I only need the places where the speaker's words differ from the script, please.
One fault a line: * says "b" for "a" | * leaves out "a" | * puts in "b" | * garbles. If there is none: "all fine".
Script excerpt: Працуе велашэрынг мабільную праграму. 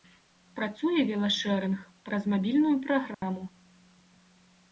* puts in "праз"